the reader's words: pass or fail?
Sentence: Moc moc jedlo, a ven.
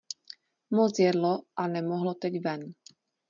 fail